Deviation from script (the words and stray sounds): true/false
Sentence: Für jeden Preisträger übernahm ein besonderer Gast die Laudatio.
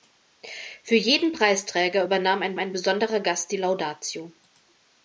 true